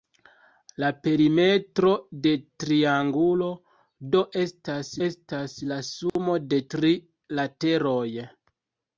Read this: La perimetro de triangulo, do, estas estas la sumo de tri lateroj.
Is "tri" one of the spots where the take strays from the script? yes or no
no